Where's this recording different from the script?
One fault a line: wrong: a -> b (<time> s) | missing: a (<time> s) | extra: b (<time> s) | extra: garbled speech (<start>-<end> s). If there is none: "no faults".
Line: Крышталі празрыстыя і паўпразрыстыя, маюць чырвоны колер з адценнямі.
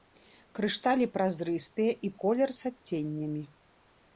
missing: паўпразрыстыя маюць чырвоны (2.1 s)